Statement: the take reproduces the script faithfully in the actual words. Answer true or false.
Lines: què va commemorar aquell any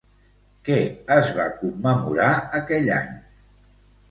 false